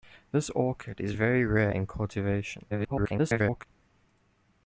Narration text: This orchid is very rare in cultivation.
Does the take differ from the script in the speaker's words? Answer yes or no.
yes